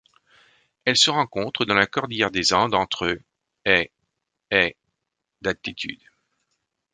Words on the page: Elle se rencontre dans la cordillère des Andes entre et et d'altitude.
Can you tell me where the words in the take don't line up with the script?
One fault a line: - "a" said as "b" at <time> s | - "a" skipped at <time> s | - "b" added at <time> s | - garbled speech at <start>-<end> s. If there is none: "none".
none